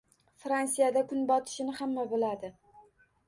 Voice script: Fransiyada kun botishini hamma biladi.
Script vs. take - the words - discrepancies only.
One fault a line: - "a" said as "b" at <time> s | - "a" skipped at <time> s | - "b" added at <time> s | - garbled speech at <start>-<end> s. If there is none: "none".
none